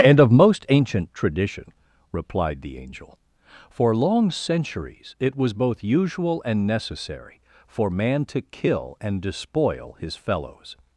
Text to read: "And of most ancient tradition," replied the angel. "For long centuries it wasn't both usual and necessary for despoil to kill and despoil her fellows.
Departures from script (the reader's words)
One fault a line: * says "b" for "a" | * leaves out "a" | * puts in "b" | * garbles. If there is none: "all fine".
* says "was" for "wasn't"
* says "man" for "despoil"
* says "his" for "her"